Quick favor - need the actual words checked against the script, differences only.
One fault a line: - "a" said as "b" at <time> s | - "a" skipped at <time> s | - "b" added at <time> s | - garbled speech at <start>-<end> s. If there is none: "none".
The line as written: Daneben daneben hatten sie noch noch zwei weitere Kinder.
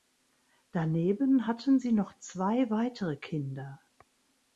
- "daneben" skipped at 1.5 s
- "noch" skipped at 2.2 s